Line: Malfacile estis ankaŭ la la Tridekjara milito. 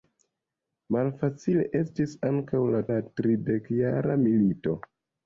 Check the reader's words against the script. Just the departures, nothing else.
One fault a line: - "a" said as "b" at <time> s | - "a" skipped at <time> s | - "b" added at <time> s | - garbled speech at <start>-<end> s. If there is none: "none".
none